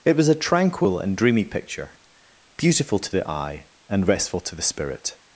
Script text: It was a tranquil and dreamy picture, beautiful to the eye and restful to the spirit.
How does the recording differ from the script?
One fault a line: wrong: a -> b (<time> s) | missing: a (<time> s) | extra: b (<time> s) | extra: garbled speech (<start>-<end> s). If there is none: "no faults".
no faults